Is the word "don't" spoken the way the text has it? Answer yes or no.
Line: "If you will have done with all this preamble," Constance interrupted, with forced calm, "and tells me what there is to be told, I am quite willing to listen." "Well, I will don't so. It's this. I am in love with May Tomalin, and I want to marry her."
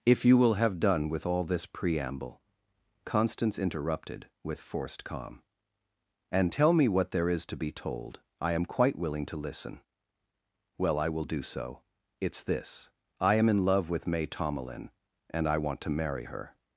no